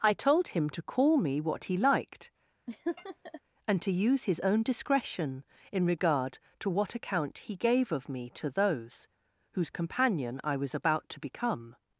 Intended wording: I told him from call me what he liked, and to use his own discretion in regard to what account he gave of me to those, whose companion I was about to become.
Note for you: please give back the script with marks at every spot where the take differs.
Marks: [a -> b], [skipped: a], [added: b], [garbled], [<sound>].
I told him [from -> to] call me what he liked, [laugh] and to use his own discretion in regard to what account he gave of me to those, whose companion I was about to become.